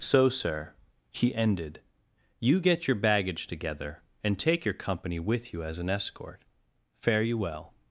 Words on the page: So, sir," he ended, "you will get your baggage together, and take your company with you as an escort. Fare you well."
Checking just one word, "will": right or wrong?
wrong